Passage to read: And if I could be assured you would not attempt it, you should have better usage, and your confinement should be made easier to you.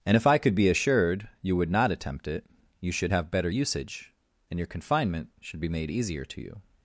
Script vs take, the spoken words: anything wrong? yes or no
no